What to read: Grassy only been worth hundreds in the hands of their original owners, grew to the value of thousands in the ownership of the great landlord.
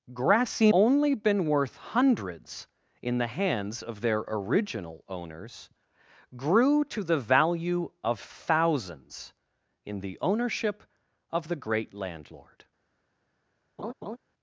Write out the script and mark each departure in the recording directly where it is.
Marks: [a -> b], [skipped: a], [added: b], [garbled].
Grassy only been worth hundreds in the hands of their original owners, grew to the value of thousands in the ownership of the great landlord.